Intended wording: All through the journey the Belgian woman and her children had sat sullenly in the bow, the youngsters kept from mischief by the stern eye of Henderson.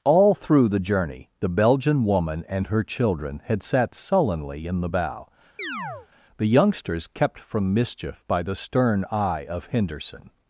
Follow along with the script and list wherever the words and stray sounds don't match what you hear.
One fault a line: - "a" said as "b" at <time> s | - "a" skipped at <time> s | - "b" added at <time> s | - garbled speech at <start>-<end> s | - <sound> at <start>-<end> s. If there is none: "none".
- chirp at 5.6-6.1 s